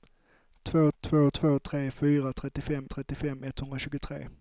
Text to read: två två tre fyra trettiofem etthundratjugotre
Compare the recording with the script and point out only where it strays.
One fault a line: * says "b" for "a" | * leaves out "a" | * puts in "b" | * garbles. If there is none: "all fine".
* puts in "två"
* puts in "trettiofem"